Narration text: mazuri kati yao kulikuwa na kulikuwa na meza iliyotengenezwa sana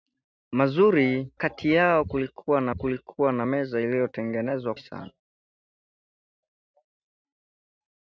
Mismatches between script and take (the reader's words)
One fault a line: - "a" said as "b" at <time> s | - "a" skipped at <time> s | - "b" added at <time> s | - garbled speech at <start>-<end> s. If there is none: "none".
none